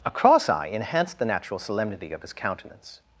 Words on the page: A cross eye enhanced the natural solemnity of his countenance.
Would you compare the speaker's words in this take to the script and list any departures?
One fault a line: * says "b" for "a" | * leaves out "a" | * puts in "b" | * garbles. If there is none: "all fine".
all fine